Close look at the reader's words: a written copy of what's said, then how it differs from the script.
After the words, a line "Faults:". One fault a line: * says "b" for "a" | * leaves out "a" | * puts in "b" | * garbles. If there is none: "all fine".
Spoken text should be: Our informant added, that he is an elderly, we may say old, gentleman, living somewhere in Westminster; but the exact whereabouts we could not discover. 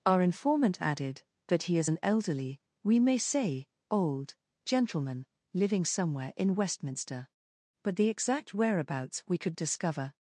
Our informant added, that he is an elderly, we may say old, gentleman, living somewhere in Westminster; but the exact whereabouts we could discover.
Faults:
* leaves out "not"